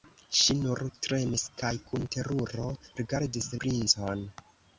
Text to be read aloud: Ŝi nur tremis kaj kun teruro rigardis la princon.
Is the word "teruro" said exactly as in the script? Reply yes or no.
yes